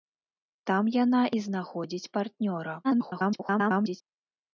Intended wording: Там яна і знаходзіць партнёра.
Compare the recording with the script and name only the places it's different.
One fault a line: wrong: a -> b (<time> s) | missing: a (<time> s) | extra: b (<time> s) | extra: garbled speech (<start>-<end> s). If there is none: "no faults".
extra: garbled speech (2.8-4.0 s)